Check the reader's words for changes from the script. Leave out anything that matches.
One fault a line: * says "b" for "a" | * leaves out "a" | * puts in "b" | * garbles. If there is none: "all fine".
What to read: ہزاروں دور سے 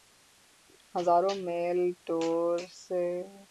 * puts in "میل"